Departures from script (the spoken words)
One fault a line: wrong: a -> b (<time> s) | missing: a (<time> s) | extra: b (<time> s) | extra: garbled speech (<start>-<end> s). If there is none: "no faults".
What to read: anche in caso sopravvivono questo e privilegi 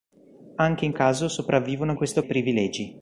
no faults